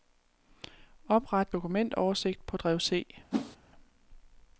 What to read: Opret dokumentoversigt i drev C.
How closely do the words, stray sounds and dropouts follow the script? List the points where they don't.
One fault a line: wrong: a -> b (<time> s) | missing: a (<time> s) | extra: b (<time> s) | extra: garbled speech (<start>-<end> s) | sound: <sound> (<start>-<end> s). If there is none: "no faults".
wrong: i -> på (2.5 s)
sound: whoosh (3.3-3.6 s)